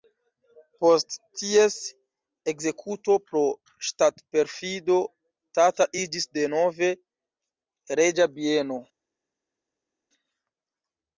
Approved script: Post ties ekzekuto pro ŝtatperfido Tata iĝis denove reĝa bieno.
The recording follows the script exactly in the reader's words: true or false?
true